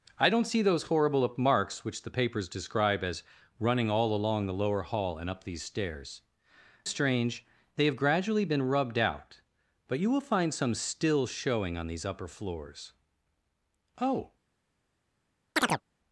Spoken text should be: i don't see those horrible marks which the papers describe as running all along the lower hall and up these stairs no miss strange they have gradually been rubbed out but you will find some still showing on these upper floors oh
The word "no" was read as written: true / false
false